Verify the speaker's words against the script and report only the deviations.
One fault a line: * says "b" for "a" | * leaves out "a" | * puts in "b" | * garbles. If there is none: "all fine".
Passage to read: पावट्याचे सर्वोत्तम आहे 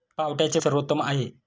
all fine